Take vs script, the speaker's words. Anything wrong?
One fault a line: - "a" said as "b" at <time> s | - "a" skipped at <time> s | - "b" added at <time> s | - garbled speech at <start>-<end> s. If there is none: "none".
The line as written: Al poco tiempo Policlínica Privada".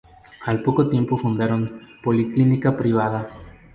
- "fundaron" added at 1.1 s